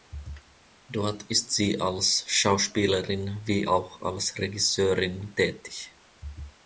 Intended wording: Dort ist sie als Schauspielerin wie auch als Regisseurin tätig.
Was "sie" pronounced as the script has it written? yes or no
yes